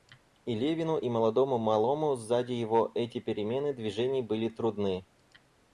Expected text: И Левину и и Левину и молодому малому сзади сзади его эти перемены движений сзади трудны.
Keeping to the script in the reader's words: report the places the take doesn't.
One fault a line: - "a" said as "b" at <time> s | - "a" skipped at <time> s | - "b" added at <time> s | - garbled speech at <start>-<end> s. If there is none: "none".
- "и Левину и" skipped at 1.1 s
- "сзади" skipped at 2.5 s
- "сзади" said as "были" at 4.2 s